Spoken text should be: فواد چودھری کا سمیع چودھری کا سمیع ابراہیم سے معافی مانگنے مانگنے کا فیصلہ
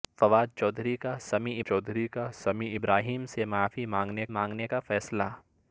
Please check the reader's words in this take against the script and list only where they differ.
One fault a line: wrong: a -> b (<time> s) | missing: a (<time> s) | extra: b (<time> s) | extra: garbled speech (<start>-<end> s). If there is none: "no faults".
no faults